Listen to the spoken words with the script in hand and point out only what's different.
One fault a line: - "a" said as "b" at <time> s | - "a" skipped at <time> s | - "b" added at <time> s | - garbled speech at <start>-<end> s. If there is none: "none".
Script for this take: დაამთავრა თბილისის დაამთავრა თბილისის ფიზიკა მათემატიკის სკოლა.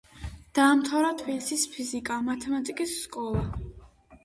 - "დაამთავრა თბილისის" skipped at 1.7 s